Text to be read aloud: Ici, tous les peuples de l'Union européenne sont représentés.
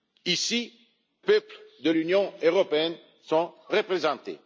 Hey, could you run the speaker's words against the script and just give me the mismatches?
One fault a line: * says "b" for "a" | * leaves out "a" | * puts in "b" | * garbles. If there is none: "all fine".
* leaves out "tous les"